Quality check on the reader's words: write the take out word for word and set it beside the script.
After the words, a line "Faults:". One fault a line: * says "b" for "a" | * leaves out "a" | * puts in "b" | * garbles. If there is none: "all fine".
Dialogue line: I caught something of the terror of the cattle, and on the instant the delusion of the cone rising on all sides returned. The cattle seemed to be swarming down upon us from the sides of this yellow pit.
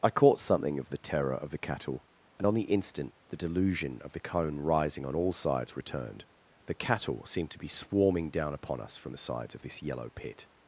I caught something of the terror of the cattle, and on the instant the delusion of the cone rising on all sides returned. The cattle seemed to be swarming down upon us from the sides of this yellow pit.
Faults:
all fine